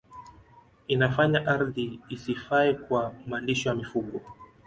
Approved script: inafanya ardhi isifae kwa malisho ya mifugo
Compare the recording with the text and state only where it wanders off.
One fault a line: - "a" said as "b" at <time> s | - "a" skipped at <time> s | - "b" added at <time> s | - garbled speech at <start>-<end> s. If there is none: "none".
none